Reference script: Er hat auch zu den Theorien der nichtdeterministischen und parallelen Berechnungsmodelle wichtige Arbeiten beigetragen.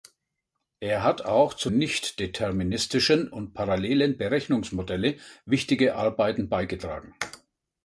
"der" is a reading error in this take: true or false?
true